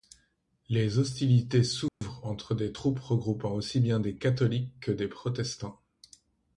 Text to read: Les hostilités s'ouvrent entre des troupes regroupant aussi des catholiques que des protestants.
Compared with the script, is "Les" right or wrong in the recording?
right